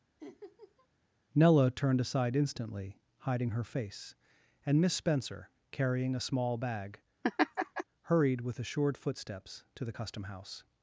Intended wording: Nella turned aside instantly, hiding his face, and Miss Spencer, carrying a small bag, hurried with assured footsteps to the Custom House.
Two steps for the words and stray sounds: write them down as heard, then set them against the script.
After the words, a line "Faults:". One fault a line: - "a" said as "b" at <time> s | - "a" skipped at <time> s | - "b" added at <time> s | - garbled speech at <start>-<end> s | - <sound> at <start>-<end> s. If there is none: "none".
Nella turned aside instantly, hiding her face, and Miss Spencer, carrying a small bag, hurried with assured footsteps to the Custom House.
Faults:
- laugh at 0.2-0.9 s
- "his" said as "her" at 3.5 s
- laugh at 7.2-7.8 s